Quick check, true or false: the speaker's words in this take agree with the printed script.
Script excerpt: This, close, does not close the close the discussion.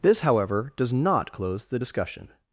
false